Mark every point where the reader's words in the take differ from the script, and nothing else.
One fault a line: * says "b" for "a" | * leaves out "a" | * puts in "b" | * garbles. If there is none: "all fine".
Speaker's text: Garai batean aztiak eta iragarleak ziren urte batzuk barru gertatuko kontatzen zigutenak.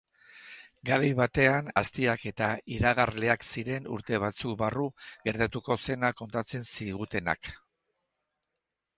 * puts in "zena"